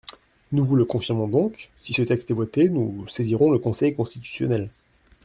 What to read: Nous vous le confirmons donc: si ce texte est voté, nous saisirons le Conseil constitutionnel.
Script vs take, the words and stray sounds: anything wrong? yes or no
no